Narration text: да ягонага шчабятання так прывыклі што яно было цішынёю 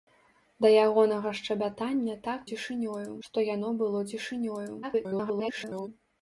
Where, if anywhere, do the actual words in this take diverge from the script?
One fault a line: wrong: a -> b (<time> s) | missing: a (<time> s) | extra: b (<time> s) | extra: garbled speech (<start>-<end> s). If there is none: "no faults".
wrong: прывыклі -> цішынёю (2.5 s)
extra: garbled speech (4.8-5.9 s)